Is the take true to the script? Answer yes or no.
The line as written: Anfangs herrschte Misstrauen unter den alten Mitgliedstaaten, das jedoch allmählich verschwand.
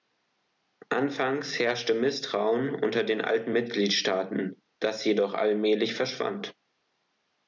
yes